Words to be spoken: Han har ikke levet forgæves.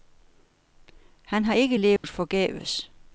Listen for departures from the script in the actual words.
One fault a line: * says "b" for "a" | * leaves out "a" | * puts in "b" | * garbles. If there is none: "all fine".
all fine